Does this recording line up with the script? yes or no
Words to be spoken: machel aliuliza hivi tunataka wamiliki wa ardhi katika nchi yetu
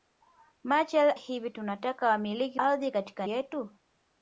no